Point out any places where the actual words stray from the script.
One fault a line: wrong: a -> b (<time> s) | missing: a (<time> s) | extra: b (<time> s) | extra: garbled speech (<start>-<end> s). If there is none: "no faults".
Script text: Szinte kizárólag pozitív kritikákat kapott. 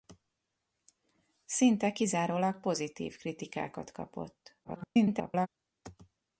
extra: garbled speech (4.6-5.5 s)